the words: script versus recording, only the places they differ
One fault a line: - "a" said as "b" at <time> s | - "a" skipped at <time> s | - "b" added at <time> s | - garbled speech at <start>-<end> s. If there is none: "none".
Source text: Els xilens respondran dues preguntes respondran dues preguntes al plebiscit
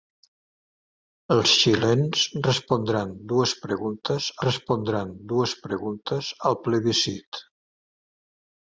none